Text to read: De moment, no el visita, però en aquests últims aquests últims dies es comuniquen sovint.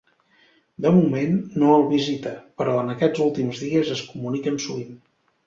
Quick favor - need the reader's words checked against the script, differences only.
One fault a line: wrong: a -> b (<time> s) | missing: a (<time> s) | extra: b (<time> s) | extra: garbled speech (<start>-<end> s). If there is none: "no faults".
missing: aquests últims (3.6 s)